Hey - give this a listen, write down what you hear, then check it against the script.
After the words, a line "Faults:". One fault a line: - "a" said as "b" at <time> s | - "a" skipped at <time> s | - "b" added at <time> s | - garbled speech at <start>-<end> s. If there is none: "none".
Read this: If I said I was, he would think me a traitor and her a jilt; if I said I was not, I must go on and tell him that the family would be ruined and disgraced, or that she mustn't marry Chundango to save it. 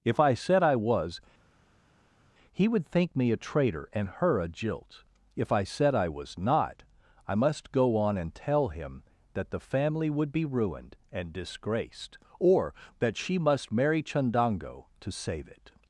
If I said I was, he would think me a traitor and her a jilt; if I said I was not, I must go on and tell him that the family would be ruined and disgraced, or that she must marry Chundango to save it.
Faults:
- "mustn't" said as "must" at 13.4 s